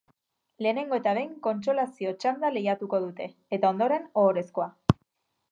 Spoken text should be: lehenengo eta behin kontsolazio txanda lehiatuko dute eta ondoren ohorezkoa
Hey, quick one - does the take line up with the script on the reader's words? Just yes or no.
yes